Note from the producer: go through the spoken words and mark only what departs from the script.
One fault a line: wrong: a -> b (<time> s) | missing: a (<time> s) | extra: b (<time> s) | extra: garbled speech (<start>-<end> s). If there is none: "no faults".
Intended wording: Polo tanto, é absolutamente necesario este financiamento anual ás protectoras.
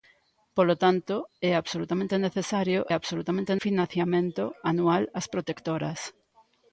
wrong: este -> absolutamente (2.9 s)